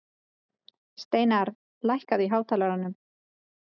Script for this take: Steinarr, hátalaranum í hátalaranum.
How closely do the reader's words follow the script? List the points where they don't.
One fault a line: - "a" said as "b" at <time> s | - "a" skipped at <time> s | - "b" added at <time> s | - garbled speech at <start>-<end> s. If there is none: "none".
- "hátalaranum" said as "lækkaðu" at 1.9 s